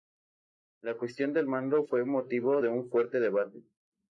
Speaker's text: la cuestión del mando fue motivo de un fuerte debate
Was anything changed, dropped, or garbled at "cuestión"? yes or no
no